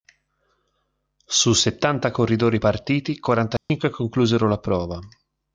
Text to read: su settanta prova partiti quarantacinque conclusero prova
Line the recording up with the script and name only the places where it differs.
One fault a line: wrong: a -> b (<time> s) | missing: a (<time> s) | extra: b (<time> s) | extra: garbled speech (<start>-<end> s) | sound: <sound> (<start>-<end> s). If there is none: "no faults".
wrong: prova -> corridori (2.1 s)
sound: dropout (3.6-3.7 s)
extra: la (4.5 s)